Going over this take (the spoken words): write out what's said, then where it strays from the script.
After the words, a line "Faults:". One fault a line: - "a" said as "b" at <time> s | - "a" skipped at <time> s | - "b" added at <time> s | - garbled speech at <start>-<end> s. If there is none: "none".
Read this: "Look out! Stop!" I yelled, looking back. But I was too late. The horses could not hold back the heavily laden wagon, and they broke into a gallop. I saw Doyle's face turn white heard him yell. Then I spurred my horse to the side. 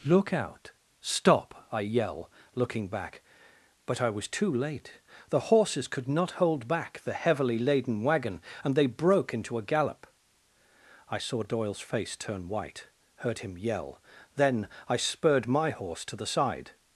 "Look out! Stop!" I yell, looking back. But I was too late. The horses could not hold back the heavily laden wagon, and they broke into a gallop. I saw Doyle's face turn white heard him yell. Then I spurred my horse to the side.
Faults:
- "yelled" said as "yell" at 1.8 s